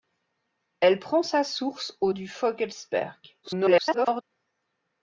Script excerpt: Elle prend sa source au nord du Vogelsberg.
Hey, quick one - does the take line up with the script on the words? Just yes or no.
no